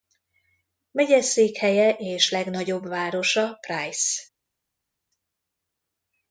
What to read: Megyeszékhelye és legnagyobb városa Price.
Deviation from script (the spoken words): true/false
false